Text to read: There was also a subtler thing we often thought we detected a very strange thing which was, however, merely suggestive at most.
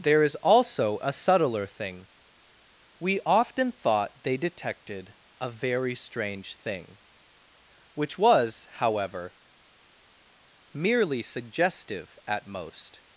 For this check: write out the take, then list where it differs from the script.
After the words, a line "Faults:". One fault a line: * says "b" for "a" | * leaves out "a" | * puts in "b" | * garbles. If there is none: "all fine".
There is also a subtler thing we often thought they detected a very strange thing which was, however, merely suggestive at most.
Faults:
* says "is" for "was"
* says "they" for "we"